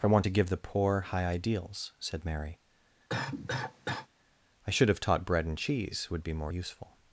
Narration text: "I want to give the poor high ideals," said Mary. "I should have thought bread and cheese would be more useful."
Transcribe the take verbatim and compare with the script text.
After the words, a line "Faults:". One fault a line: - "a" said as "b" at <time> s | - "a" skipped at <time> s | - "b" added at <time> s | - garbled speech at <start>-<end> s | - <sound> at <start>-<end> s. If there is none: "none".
"I want to give the poor high ideals," said Mary. "I should have taught bread and cheese would be more useful."
Faults:
- cough at 3.1-4.1 s
- "thought" said as "taught" at 5.0 s